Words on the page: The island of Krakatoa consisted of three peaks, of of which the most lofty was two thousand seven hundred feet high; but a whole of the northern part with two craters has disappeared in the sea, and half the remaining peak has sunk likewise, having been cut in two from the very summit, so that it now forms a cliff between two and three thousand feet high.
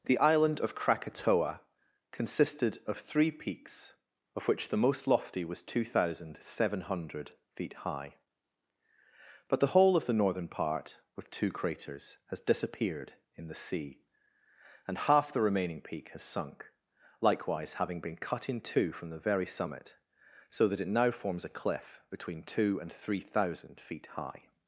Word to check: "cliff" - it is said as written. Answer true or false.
true